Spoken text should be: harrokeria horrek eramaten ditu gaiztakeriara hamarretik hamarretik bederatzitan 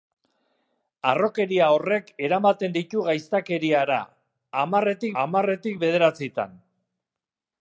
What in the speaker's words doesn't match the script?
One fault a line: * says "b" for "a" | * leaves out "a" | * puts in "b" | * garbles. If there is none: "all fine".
all fine